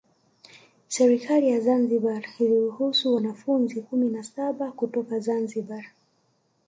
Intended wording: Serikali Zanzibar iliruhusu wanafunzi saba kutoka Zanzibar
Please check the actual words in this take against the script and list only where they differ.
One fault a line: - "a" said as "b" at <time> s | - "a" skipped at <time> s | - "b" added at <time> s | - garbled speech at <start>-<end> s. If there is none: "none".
- "ya" added at 1.5 s
- "kumi na" added at 3.8 s